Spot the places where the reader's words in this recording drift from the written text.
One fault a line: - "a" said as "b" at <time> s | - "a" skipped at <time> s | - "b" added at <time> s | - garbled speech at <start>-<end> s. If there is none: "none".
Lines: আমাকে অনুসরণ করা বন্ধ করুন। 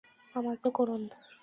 - "অনুসরণ করা বন্ধ" skipped at 0.7 s